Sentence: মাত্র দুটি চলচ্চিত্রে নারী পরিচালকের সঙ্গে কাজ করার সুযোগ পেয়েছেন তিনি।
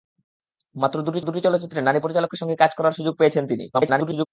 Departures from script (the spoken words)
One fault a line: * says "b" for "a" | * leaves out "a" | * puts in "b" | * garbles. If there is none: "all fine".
* puts in "দুটি"
* garbles